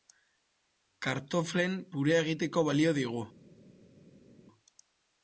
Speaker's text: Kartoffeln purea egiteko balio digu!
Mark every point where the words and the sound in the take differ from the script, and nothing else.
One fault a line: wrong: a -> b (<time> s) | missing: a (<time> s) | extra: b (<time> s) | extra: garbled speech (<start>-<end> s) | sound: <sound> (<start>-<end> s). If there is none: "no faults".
no faults